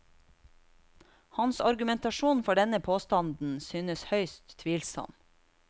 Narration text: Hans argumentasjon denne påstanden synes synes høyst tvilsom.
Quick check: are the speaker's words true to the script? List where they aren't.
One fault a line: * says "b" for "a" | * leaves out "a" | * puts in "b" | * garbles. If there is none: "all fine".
* puts in "for"
* leaves out "synes"